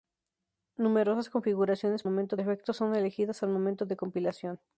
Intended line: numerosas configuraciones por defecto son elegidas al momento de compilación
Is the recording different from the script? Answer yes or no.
yes